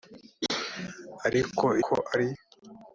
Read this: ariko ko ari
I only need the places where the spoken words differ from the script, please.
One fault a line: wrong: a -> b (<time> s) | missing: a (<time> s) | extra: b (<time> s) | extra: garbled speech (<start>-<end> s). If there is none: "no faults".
no faults